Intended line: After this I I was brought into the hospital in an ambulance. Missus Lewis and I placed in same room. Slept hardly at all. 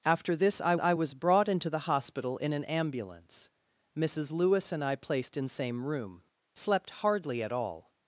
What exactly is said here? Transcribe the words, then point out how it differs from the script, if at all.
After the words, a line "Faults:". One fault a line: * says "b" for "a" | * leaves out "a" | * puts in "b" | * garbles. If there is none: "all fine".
After this I I was brought into the hospital in an ambulance. Missus Lewis and I placed in same room. Slept hardly at all.
Faults:
all fine